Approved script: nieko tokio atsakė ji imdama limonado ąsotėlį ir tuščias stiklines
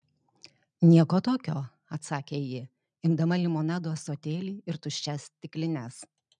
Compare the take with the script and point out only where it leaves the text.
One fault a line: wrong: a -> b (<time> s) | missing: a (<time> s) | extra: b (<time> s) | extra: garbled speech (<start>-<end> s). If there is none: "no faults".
no faults